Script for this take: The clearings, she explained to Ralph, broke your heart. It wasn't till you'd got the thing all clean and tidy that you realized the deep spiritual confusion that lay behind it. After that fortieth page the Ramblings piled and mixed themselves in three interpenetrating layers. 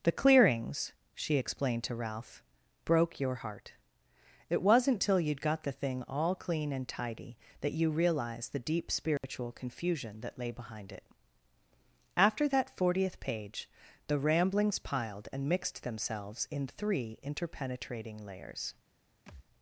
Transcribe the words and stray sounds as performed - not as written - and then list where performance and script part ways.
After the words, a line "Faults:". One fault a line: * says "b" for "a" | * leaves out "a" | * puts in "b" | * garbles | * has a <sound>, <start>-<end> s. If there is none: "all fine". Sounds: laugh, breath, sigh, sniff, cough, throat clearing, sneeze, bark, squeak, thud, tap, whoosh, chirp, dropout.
The clearings, she explained to Ralph, broke your heart. It wasn't till you'd got the thing all clean and tidy that you realized the deep spiritual confusion that lay behind it. After that fortieth page the Ramblings piled and mixed themselves in three interpenetrating layers.
Faults:
* has a dropout, 9.2-9.2 s
* has a thud, 19.3-19.5 s